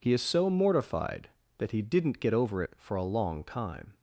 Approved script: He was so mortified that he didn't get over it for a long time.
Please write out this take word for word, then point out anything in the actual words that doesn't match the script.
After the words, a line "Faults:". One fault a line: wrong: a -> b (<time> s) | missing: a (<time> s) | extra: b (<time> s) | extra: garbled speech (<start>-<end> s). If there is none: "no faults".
He is so mortified that he didn't get over it for a long time.
Faults:
wrong: was -> is (0.1 s)